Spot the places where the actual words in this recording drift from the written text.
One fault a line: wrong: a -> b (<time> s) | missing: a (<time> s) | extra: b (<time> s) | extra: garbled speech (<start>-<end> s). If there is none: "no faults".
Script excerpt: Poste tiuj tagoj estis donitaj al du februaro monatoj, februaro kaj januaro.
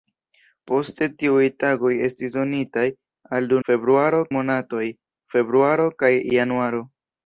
no faults